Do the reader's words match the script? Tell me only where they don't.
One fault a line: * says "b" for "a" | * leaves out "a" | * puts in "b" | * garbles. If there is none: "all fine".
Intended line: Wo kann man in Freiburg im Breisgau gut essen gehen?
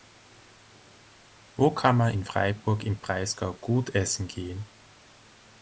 all fine